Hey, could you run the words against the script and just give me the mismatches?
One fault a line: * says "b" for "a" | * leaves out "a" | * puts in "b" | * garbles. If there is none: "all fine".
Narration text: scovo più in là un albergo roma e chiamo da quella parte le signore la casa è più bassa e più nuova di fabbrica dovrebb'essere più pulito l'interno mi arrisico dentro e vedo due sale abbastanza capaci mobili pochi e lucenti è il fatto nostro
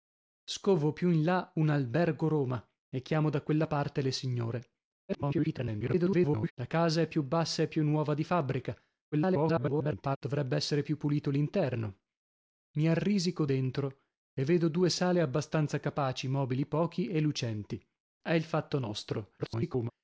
* garbles
* garbles
* garbles